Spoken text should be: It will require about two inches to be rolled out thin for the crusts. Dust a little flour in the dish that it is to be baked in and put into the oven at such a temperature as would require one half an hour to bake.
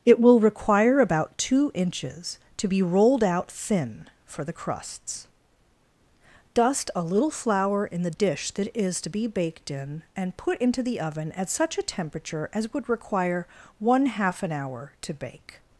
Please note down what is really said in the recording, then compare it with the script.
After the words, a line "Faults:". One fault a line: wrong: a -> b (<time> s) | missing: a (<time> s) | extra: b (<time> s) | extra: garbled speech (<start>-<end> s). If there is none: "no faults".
It will require about two inches to be rolled out thin for the crusts. Dust a little flour in the dish that is to be baked in and put into the oven at such a temperature as would require one half an hour to bake.
Faults:
missing: it (8.7 s)